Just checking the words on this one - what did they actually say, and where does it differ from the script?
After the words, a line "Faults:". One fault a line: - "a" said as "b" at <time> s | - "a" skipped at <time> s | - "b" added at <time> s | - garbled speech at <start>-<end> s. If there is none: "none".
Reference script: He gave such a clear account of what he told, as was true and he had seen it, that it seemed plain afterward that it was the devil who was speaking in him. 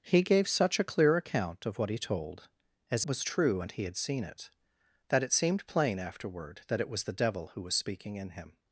He gave such a clear account of what he told, as was true and he had seen it, that it seemed plain afterward that it was the devil who was speaking in him.
Faults:
none